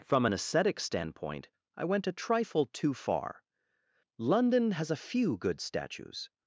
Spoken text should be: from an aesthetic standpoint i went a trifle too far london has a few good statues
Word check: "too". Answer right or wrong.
right